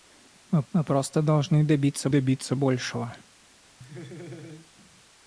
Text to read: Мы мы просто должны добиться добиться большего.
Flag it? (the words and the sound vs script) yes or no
yes